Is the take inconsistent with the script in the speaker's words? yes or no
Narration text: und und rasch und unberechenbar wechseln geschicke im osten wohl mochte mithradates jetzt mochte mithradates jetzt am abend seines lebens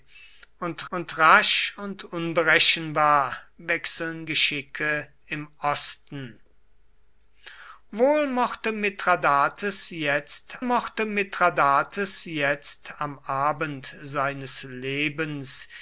no